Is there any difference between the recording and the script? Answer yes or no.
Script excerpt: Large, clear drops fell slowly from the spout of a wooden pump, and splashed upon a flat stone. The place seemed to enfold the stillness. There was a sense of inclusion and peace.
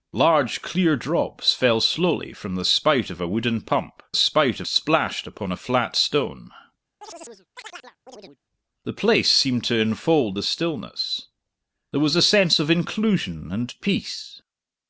yes